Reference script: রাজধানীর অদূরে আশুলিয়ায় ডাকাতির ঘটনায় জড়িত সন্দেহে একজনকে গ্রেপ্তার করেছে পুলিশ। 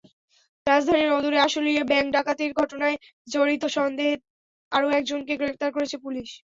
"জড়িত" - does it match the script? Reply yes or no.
yes